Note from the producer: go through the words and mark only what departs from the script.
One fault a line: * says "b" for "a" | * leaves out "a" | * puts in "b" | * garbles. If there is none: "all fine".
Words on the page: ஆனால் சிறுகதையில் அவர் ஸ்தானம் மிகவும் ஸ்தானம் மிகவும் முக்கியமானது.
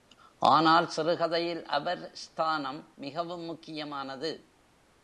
* leaves out "ஸ்தானம் மிகவும்"